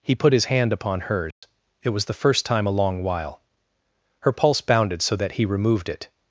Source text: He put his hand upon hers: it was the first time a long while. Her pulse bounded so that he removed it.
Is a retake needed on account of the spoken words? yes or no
no